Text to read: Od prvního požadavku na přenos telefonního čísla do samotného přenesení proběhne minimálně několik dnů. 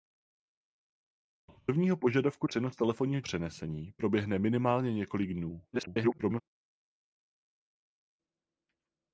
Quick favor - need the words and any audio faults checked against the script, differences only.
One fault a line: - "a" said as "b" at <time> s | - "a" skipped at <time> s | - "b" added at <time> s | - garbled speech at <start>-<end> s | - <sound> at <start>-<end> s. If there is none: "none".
- "na" skipped at 2.5 s
- "čísla do samotného" skipped at 3.2 s
- garbled speech at 5.7-6.4 s